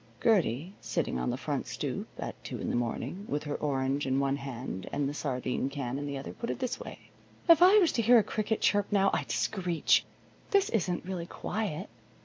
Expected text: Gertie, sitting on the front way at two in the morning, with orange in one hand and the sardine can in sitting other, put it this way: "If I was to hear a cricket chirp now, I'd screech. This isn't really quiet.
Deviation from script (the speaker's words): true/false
true